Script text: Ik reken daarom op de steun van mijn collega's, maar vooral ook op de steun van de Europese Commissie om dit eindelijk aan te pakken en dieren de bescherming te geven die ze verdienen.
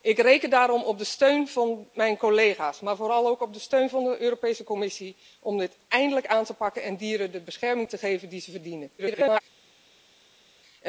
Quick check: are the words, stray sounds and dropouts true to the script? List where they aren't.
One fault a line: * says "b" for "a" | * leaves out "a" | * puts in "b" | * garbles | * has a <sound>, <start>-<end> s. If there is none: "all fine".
* garbles